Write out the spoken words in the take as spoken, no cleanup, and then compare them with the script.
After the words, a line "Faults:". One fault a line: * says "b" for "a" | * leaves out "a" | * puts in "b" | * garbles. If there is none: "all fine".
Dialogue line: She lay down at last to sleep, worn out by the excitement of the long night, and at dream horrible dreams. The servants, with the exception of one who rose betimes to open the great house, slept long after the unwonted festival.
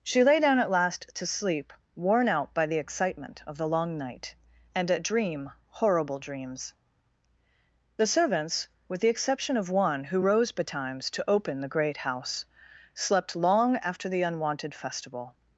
She lay down at last to sleep, worn out by the excitement of the long night, and at dream horrible dreams. The servants, with the exception of one who rose betimes to open the great house, slept long after the unwonted festival.
Faults:
all fine